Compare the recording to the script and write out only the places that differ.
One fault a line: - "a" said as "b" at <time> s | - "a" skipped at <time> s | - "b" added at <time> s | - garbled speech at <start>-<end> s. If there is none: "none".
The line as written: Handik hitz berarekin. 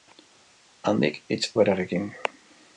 none